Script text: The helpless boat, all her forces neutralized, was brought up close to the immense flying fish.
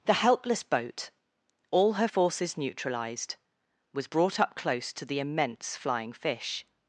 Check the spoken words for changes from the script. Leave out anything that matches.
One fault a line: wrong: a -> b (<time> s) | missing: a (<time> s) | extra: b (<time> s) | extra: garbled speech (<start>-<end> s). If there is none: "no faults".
no faults